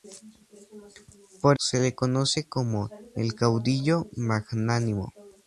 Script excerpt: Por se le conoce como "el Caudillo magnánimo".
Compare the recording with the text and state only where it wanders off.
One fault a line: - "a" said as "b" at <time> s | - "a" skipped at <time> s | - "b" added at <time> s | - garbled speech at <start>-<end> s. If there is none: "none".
none